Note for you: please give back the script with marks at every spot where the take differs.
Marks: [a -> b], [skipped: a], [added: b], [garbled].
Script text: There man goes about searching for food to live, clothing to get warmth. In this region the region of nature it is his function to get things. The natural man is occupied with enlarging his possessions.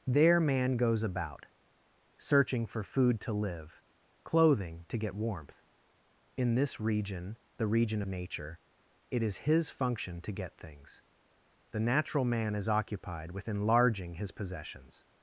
There man goes about searching for food to live, clothing to get warmth. In this region the region [skipped: of] nature it is his function to get things. The natural man is occupied with enlarging his possessions.